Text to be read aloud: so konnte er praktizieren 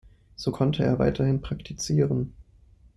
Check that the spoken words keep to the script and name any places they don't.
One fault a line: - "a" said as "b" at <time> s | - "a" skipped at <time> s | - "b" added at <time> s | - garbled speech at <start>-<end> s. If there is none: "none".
- "weiterhin" added at 1.0 s